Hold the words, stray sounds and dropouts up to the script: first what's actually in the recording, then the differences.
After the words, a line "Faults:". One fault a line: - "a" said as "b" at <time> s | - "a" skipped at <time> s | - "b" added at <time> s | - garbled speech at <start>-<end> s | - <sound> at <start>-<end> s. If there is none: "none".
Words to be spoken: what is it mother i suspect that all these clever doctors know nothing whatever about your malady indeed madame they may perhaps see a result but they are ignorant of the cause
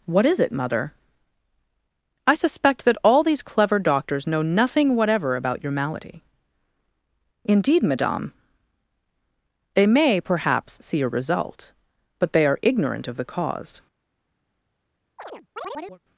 what is it mother i suspect that all these clever doctors know nothing whatever about your malady indeed madame they may perhaps see a result but they are ignorant of the cause
Faults:
- chirp at 15.2-16.0 s